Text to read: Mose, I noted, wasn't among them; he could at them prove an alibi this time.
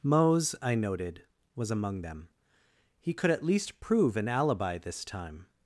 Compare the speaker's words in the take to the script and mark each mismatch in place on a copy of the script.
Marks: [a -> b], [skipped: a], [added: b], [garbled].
Mose, I noted, [wasn't -> was] among them; he could at [them -> least] prove an alibi this time.